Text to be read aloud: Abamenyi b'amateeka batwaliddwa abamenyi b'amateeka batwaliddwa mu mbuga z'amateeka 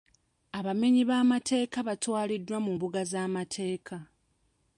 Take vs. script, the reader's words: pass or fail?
fail